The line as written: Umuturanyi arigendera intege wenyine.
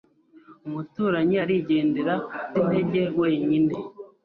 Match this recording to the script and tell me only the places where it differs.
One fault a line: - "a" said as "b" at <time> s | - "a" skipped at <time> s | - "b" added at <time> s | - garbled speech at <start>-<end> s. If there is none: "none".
none